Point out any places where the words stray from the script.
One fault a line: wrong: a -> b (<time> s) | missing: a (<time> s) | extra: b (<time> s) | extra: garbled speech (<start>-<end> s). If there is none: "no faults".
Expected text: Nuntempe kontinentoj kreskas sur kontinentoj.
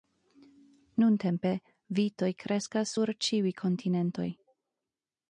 wrong: kontinentoj -> vitoj (2.0 s)
extra: ĉiuj (3.3 s)